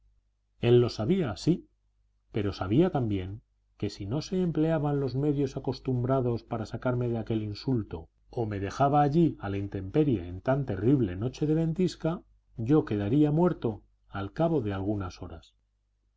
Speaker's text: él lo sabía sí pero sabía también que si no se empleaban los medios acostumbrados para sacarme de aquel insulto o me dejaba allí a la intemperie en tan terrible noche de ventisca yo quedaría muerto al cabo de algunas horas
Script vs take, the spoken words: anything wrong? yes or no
no